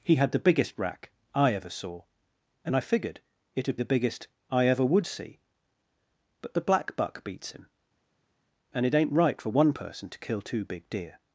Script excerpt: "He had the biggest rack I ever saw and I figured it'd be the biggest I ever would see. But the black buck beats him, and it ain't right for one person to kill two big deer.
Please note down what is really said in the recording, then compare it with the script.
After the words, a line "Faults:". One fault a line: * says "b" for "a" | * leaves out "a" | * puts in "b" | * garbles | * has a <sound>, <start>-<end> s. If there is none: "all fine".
"He had the biggest rack I ever saw and I figured it'd the biggest I ever would see. But the black buck beats him, and it ain't right for one person to kill two big deer.
Faults:
* leaves out "be"